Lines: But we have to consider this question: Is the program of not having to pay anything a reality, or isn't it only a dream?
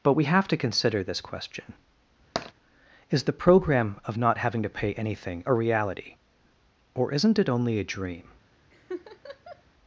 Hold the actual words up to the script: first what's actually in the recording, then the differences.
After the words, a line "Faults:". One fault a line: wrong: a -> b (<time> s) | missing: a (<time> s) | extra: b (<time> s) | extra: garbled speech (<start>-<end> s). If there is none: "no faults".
But we have to consider this question: Is the program of not having to pay anything a reality, or isn't it only a dream?
Faults:
no faults